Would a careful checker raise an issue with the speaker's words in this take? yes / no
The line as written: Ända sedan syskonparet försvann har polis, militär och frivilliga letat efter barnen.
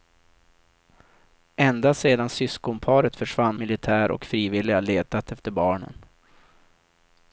yes